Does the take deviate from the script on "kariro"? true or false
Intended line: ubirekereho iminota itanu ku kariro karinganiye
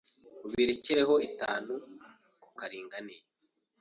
true